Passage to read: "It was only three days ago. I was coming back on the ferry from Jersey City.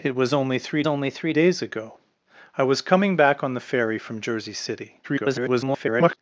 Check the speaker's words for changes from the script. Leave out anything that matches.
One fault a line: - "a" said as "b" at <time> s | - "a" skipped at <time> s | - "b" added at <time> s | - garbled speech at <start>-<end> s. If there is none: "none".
- "only three" added at 0.9 s
- garbled speech at 5.0-6.2 s